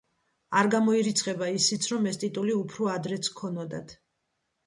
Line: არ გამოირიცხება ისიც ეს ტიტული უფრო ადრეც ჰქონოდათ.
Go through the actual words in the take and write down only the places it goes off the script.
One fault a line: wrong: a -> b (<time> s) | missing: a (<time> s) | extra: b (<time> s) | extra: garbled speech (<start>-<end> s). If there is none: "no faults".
extra: რომ (1.9 s)